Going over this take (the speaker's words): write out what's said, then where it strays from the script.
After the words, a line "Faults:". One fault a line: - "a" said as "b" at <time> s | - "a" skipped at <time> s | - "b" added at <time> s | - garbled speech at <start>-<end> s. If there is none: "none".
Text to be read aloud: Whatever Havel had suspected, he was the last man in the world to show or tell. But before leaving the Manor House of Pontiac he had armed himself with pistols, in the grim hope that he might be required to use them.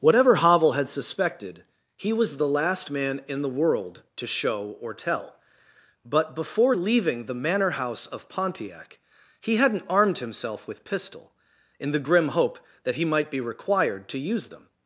Whatever Havel had suspected, he was the last man in the world to show or tell. But before leaving the Manor House of Pontiac he hadn't armed himself with pistol, in the grim hope that he might be required to use them.
Faults:
- "had" said as "hadn't" at 9.6 s
- "pistols" said as "pistol" at 10.9 s